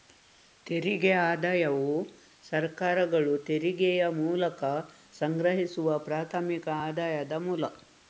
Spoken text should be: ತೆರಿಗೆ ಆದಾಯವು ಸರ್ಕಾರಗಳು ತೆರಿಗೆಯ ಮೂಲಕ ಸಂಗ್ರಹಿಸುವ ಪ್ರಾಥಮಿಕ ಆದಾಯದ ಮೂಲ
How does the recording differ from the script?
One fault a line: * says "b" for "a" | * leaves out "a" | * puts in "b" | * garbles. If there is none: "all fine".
all fine